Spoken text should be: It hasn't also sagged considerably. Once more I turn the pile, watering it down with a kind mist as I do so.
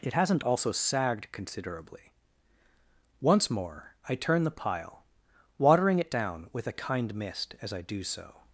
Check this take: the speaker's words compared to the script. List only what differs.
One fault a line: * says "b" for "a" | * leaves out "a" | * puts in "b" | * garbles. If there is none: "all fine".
all fine